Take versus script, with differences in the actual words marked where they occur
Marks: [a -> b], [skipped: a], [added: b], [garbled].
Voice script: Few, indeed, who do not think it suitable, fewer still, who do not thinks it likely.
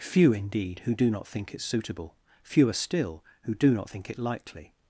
Few, indeed, who do not think it suitable, fewer still, who do not [thinks -> think] it likely.